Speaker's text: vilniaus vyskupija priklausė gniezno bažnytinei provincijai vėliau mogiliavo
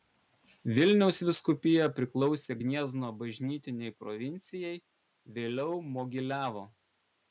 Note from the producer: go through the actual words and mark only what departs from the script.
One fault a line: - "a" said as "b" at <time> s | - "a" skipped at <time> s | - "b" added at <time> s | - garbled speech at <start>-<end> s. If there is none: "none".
none